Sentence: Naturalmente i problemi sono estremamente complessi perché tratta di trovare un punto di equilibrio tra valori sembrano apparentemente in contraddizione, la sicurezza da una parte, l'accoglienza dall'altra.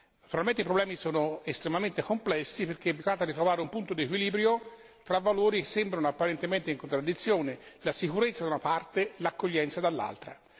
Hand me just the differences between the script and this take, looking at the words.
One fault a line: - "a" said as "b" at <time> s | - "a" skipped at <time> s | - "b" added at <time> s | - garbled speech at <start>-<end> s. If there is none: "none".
none